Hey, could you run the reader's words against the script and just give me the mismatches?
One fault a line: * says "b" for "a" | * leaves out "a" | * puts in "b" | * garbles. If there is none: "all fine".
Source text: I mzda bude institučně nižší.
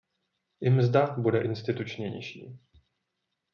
all fine